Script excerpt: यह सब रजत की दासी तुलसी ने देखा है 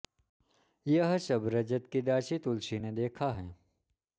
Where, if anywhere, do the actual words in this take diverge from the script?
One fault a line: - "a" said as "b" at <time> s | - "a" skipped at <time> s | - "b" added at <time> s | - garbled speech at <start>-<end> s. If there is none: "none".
none